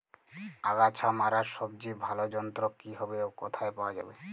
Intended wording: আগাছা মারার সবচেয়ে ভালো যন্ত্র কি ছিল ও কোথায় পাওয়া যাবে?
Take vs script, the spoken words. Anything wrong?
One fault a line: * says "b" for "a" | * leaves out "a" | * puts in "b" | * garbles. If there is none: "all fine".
* says "হবে" for "ছিল"